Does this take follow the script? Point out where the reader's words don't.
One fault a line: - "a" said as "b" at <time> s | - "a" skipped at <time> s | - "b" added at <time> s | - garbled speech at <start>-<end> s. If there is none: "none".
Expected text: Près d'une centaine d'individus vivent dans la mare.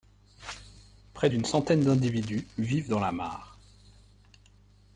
none